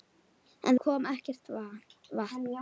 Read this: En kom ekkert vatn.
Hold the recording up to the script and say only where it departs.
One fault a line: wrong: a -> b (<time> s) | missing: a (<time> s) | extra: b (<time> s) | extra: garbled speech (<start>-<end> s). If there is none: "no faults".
no faults